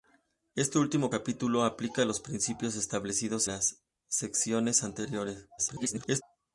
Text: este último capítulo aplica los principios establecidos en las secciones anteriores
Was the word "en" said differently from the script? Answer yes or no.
yes